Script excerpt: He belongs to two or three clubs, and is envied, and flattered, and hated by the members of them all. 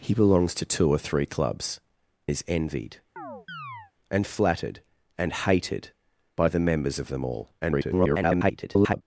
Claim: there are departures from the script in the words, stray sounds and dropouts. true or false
true